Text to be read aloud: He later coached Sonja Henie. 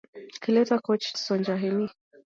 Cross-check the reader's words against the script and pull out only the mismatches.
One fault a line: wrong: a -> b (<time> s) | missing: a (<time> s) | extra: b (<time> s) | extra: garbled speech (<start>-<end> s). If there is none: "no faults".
no faults